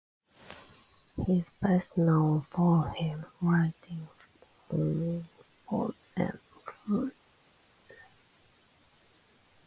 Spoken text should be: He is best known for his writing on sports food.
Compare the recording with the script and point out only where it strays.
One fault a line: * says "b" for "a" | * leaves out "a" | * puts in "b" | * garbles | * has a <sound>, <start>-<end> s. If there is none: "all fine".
* puts in "and"